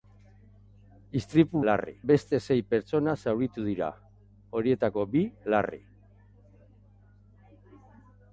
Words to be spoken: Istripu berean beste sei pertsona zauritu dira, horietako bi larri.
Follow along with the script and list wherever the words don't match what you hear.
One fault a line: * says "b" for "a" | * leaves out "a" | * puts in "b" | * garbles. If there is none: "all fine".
* says "larri" for "berean"